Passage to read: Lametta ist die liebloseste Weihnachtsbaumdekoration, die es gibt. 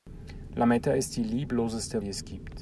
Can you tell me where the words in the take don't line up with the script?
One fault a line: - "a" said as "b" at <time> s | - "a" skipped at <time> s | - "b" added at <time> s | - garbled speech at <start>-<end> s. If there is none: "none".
- "Weihnachtsbaumdekoration" skipped at 2.0 s